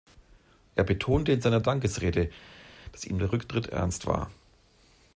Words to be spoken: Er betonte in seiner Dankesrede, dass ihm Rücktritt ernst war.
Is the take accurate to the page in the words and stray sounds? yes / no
no